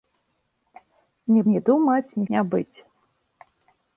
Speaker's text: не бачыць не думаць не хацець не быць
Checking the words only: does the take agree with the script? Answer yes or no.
no